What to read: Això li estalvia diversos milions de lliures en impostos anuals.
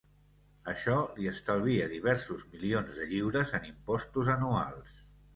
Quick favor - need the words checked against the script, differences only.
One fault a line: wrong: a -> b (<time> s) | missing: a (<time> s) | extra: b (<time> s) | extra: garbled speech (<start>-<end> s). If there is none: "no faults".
no faults